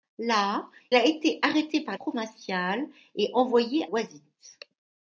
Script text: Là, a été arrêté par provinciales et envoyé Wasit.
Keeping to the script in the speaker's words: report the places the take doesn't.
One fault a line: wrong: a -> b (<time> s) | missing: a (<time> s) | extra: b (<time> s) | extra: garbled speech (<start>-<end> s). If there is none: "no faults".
no faults